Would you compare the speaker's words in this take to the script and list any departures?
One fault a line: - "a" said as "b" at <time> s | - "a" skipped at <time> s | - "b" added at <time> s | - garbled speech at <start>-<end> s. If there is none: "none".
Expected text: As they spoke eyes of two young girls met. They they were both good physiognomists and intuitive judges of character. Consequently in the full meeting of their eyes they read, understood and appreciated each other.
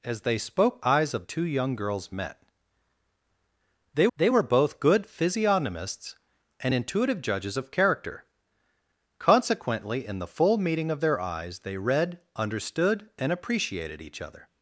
none